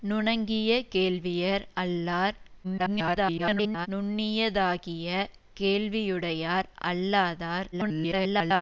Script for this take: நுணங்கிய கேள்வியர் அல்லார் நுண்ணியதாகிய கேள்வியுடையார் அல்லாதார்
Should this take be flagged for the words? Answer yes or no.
yes